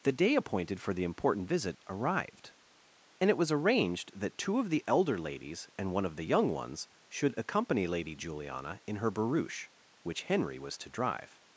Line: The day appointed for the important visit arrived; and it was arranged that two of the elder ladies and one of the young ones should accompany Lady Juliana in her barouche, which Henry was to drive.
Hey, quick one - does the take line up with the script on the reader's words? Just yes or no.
yes